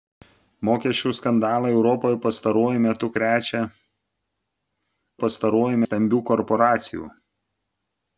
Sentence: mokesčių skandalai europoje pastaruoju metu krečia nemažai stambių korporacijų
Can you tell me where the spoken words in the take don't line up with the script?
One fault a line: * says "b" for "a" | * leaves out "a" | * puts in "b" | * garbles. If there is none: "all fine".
* says "pastaruoju" for "nemažai"